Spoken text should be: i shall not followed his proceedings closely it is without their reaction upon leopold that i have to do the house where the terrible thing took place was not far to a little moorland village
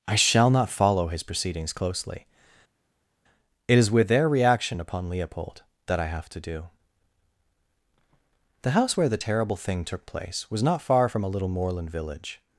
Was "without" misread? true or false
true